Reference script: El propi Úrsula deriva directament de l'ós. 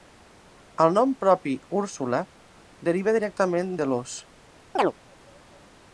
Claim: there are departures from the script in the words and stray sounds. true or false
true